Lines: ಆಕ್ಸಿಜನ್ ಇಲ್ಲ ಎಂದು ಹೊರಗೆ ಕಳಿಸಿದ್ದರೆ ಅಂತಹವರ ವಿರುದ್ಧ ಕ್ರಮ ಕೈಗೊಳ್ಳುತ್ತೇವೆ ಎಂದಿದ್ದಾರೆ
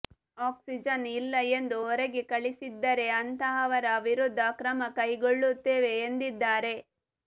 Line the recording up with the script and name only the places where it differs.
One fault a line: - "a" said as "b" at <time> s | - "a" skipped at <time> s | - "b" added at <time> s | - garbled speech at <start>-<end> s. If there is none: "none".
none